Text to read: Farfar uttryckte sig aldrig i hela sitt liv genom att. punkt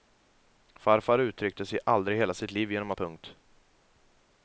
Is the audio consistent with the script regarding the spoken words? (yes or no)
yes